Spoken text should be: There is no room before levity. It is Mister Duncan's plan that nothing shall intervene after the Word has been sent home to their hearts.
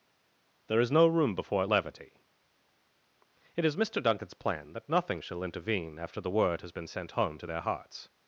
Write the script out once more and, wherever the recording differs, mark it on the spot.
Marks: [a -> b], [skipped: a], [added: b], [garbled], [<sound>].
There is no room before levity. It is Mister Duncan's plan that nothing shall intervene after the Word has been sent home to their hearts.